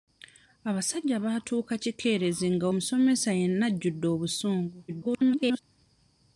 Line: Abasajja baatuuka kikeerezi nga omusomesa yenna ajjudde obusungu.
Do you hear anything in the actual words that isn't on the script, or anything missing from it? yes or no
yes